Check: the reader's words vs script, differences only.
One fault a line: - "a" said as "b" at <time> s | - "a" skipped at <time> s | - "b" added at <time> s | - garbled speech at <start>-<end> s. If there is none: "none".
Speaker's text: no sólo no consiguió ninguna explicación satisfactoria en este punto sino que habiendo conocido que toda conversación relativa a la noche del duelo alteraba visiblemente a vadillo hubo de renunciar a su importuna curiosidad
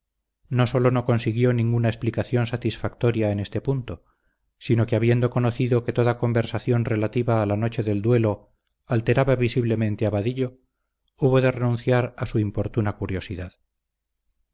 none